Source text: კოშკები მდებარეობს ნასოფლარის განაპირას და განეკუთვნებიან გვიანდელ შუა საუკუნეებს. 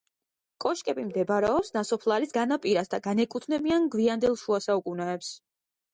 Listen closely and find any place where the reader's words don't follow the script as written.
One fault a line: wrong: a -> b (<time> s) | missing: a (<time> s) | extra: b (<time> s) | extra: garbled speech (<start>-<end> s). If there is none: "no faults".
no faults